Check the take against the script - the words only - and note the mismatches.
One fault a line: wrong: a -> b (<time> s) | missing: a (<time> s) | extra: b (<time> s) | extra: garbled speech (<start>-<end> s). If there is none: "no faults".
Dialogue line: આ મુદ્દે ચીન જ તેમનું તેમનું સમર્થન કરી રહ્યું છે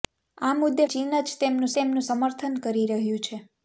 no faults